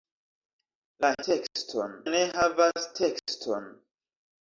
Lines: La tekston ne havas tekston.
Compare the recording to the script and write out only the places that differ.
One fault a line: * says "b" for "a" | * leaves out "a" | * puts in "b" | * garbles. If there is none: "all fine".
all fine